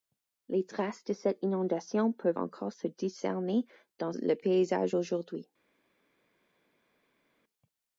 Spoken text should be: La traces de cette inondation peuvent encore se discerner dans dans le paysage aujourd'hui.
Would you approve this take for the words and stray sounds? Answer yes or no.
no